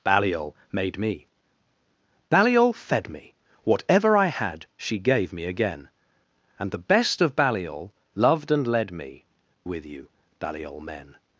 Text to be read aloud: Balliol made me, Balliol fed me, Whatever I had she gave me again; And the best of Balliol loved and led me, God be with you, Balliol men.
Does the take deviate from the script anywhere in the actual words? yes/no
yes